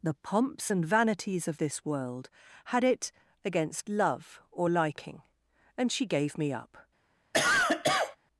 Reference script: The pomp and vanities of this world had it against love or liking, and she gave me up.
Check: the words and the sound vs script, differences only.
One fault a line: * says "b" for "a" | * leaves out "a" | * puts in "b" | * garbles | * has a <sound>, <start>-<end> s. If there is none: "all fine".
* says "pomps" for "pomp"
* has a cough, 7.3-8.2 s